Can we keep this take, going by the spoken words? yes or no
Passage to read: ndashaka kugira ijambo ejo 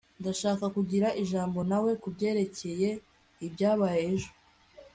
no